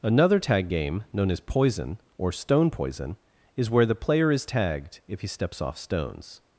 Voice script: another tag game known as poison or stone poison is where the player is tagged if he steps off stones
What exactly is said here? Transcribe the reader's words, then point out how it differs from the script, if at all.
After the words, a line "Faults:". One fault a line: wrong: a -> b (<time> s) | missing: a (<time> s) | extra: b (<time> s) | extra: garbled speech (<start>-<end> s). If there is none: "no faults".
another tag game known as poison or stone poison is where the player is tagged if he steps off stones
Faults:
no faults